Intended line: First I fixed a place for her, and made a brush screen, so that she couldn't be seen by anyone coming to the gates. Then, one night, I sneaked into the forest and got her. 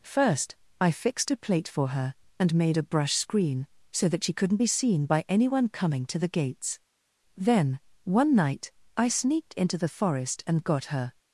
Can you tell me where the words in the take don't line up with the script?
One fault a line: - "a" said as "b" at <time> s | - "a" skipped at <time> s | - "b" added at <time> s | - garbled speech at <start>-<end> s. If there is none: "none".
- "place" said as "plate" at 1.4 s